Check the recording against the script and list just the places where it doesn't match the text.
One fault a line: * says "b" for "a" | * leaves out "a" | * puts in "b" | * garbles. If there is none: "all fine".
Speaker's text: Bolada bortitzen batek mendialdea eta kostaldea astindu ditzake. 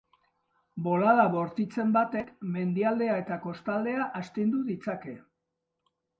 all fine